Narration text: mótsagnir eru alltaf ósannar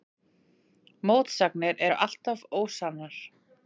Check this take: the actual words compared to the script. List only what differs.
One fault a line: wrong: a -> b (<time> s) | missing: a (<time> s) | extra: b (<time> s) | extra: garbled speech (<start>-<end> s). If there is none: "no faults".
no faults